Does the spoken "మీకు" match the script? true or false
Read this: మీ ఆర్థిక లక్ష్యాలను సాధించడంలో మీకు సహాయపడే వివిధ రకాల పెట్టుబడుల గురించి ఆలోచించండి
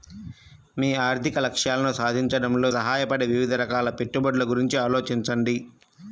false